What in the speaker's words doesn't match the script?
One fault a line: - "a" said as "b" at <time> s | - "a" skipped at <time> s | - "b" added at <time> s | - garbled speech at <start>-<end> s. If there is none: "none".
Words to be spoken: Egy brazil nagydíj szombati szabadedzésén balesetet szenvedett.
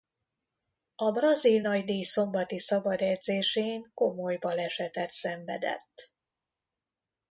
- "Egy" said as "A" at 0.9 s
- "komoly" added at 3.9 s